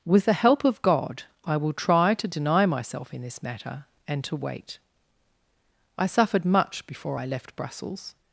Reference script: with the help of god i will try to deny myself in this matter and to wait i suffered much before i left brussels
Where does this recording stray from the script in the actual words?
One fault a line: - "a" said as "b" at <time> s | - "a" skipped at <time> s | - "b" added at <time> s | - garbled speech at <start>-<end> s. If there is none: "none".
none